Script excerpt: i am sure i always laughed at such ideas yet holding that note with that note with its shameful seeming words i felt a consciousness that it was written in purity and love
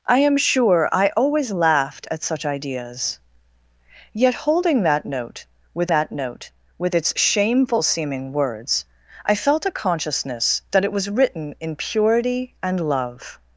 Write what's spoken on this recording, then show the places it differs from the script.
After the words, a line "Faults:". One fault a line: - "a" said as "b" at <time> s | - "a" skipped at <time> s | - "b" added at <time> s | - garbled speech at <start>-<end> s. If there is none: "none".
i am sure i always laughed at such ideas yet holding that note with that note with its shameful seeming words i felt a consciousness that it was written in purity and love
Faults:
none